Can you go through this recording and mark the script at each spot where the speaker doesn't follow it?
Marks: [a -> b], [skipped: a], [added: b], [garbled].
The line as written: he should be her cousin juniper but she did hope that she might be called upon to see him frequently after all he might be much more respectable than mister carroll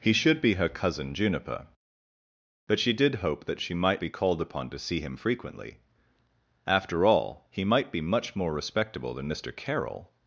he should be her cousin juniper but she did hope that she might be called upon to see him frequently after all he might be much more respectable than mister carroll